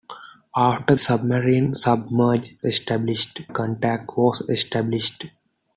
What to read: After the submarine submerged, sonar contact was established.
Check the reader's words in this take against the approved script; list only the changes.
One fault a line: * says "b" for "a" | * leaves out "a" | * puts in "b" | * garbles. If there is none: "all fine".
* leaves out "the"
* says "established" for "sonar"